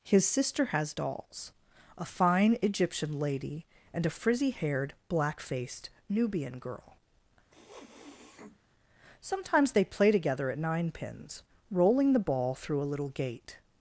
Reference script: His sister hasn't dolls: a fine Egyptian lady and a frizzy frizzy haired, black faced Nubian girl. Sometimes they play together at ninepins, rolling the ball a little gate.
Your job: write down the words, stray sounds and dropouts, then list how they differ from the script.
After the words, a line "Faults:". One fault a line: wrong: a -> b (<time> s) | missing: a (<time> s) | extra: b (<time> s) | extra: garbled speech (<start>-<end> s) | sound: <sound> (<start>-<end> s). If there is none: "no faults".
His sister has dolls: a fine Egyptian lady and a frizzy haired, black faced Nubian girl. Sometimes they play together at ninepins, rolling the ball through a little gate.
Faults:
wrong: hasn't -> has (0.7 s)
missing: frizzy (4.5 s)
sound: sniff (7.5-8.6 s)
extra: through (12.5 s)